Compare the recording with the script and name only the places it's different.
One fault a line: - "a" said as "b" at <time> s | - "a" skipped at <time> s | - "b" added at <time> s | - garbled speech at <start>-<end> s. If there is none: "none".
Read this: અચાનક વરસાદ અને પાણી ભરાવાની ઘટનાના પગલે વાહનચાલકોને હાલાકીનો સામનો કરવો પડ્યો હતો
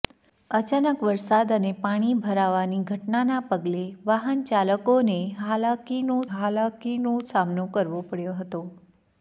- "હાલાકીનો" added at 6.3 s